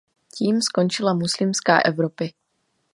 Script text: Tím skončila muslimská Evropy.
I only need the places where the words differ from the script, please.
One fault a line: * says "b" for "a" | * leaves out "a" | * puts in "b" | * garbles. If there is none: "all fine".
all fine